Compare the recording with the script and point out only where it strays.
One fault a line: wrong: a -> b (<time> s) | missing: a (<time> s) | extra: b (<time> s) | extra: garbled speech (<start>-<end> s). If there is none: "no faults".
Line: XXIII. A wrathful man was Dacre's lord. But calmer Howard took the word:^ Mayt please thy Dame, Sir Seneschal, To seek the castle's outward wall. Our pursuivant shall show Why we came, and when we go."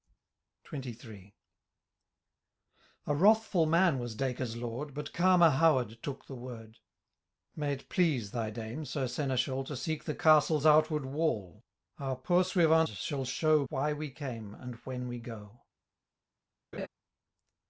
no faults